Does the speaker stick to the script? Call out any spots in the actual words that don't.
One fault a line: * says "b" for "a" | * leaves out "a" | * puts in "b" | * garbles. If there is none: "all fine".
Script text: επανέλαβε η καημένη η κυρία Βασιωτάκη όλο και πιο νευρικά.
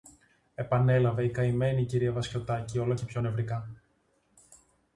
all fine